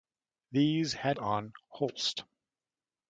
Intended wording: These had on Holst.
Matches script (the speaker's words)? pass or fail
pass